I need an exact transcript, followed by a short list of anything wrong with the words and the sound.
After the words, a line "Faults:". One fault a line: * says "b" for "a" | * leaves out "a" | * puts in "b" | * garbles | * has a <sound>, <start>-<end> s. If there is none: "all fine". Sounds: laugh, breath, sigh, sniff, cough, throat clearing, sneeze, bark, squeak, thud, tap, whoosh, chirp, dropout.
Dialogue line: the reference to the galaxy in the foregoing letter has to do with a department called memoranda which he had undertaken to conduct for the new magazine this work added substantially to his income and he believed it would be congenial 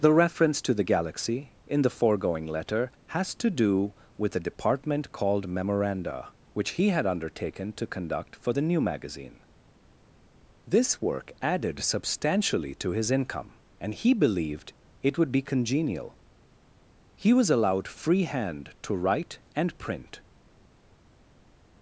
the reference to the galaxy in the foregoing letter has to do with a department called memoranda which he had undertaken to conduct for the new magazine this work added substantially to his income and he believed it would be congenial he was allowed free hand to write and print
Faults:
* puts in "he was allowed free hand to write and print"